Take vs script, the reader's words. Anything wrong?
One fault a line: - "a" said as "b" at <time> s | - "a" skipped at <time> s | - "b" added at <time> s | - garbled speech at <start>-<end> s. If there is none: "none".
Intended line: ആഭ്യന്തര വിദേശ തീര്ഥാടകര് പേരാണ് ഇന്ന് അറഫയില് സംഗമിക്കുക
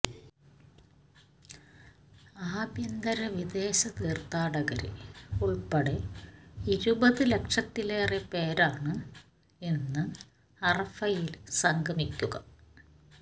- "ഉള്പ്പെടെ ഇരുപത് ലക്ഷത്തിലേറെ" added at 5.4 s